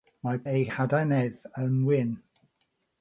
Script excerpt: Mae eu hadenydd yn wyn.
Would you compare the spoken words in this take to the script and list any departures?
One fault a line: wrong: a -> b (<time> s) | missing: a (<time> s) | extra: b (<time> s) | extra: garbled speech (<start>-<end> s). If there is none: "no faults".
no faults